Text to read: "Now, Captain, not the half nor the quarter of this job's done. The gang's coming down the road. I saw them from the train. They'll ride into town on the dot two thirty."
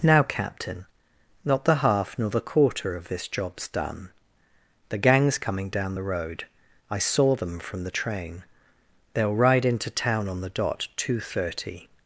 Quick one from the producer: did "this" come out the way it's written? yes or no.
yes